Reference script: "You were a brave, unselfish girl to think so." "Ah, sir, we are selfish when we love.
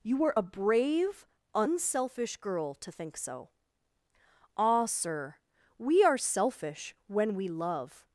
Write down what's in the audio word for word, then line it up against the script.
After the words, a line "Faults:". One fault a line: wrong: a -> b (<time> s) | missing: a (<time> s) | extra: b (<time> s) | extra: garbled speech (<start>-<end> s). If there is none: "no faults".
"You were a brave, unselfish girl to think so." "Ah, sir, we are selfish when we love.
Faults:
no faults